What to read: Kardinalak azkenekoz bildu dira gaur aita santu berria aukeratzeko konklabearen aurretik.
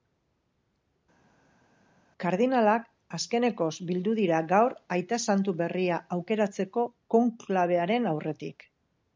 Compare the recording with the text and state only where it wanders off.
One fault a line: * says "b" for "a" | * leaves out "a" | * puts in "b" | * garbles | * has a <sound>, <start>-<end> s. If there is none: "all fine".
all fine